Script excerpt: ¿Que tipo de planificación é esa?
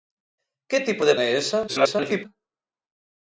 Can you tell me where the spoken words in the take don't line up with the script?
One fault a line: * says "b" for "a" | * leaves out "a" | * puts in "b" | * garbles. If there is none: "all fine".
* leaves out "planificación"
* garbles